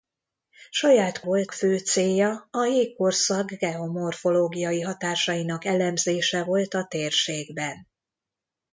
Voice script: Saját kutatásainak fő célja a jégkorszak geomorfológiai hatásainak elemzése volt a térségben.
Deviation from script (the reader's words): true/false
true